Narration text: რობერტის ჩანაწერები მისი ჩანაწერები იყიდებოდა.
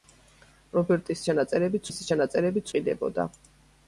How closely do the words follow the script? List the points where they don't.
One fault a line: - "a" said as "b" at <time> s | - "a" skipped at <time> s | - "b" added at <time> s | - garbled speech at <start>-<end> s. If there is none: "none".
none